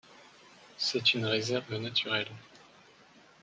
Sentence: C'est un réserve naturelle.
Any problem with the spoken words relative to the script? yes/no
yes